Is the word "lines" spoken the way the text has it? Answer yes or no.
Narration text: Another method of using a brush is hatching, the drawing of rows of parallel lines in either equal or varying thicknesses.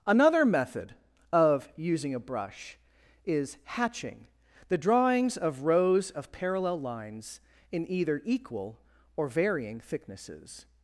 yes